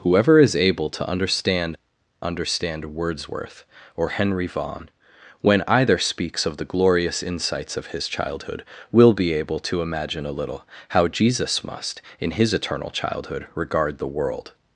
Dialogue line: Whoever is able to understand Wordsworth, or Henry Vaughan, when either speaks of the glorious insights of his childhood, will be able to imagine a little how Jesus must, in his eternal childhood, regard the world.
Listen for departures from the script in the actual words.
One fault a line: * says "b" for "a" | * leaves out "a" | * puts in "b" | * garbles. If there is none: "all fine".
* puts in "understand"